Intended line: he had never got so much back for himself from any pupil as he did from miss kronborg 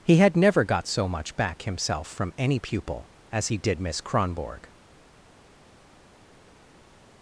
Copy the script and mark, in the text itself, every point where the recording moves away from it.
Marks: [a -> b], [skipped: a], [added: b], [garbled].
he had never got so much back [skipped: for] himself from any pupil as he did [skipped: from] miss kronborg